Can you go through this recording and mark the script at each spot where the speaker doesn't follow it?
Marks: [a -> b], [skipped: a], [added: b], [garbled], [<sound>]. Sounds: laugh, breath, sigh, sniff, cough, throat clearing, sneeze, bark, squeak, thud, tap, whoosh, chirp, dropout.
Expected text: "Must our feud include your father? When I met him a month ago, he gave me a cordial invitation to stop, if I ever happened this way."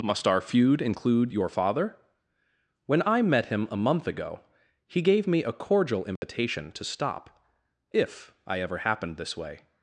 "Must our feud include your father? When I met him a month ago, he gave me a cordial invitation [dropout] to stop, if I ever happened this way."